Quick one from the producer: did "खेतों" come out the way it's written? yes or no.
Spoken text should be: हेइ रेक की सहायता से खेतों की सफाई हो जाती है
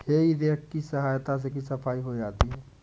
no